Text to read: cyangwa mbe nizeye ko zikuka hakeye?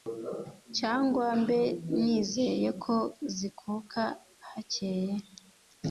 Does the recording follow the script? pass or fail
pass